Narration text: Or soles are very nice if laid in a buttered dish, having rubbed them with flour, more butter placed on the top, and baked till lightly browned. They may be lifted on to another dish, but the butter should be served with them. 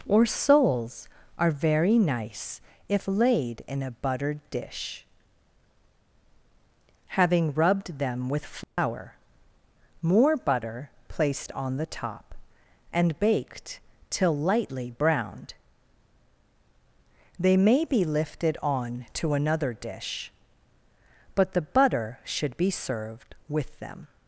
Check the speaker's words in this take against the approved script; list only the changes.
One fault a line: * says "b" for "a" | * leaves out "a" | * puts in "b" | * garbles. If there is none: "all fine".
all fine